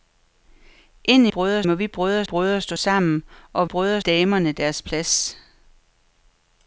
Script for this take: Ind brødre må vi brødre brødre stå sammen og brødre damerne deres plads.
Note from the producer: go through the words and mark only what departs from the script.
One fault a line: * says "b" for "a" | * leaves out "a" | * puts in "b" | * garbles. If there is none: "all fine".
all fine